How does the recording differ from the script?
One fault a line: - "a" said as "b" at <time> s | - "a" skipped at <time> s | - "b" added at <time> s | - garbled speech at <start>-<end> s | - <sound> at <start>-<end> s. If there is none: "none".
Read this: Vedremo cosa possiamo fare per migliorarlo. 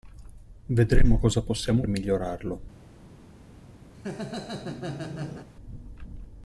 - "fare per" skipped at 1.8 s
- laugh at 3.9-5.5 s